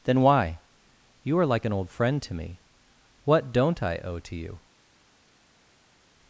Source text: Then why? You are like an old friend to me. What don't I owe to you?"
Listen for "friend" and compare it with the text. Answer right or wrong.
right